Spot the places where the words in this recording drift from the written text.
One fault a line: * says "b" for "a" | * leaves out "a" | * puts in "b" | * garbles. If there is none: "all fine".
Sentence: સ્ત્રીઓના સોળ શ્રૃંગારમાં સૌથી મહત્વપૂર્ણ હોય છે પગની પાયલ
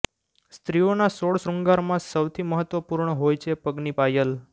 all fine